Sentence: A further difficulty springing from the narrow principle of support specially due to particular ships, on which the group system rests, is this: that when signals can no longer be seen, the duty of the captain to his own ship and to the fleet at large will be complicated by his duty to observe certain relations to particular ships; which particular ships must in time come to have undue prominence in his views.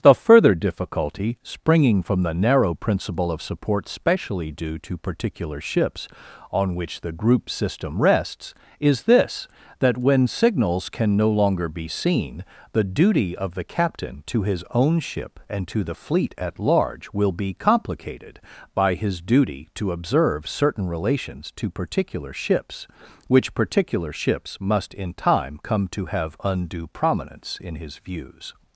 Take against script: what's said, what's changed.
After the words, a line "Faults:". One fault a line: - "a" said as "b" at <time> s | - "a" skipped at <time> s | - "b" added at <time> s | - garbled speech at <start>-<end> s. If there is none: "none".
The further difficulty springing from the narrow principle of support specially due to particular ships, on which the group system rests, is this: that when signals can no longer be seen, the duty of the captain to his own ship and to the fleet at large will be complicated by his duty to observe certain relations to particular ships; which particular ships must in time come to have undue prominence in his views.
Faults:
- "A" said as "The" at 0.0 s